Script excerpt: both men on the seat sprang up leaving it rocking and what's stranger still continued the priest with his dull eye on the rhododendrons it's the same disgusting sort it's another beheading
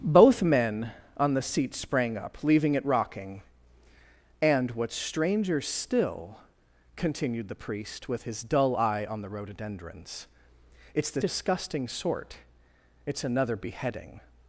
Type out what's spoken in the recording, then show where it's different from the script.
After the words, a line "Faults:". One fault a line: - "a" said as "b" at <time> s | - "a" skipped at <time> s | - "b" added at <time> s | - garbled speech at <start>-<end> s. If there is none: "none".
both men on the seat sprang up leaving it rocking and what's stranger still continued the priest with his dull eye on the rhododendrons it's the disgusting sort it's another beheading
Faults:
- "same" skipped at 11.2 s